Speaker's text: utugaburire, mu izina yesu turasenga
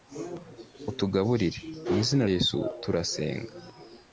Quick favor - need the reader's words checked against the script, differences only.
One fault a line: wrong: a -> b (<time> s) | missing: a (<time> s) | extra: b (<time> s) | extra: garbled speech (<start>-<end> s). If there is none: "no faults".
no faults